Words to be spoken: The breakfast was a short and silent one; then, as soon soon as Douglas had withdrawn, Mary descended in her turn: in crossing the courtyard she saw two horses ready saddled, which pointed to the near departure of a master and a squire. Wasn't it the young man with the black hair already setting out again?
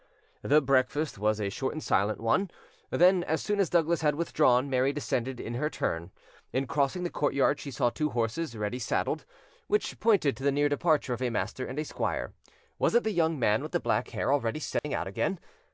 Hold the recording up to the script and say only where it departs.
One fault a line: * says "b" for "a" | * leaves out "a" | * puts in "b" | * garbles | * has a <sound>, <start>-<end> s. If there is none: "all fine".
* leaves out "soon"
* says "Was" for "Wasn't"
* has a dropout, 14.8-14.8 s